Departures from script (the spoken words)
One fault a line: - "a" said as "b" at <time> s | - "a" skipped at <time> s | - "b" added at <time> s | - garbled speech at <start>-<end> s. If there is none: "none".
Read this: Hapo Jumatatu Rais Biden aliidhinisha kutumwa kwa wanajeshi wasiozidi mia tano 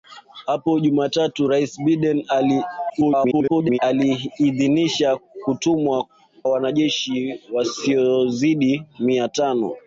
- garbled speech at 2.9-3.8 s
- "kwa" skipped at 6.1 s